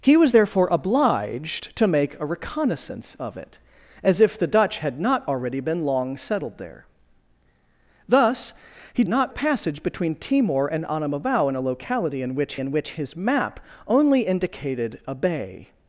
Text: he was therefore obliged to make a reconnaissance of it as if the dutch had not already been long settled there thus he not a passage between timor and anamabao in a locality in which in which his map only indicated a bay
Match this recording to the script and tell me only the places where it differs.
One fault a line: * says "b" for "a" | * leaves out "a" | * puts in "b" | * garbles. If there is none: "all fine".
all fine